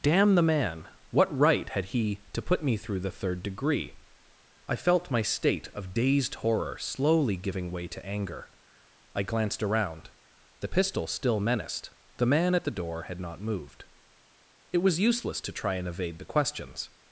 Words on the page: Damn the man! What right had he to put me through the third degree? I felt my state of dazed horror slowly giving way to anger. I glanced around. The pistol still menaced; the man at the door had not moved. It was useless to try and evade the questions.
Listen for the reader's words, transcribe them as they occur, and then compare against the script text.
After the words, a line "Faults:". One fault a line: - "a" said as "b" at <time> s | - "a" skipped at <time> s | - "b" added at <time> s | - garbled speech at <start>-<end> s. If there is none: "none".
Damn the man! What right had he to put me through the third degree? I felt my state of dazed horror slowly giving way to anger. I glanced around. The pistol still menaced; the man at the door had not moved. It was useless to try and evade the questions.
Faults:
none